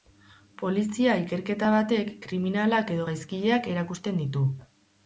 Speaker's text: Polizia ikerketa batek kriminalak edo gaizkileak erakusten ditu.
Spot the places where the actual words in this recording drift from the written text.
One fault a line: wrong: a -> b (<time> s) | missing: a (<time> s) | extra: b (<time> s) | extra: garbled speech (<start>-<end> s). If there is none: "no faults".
no faults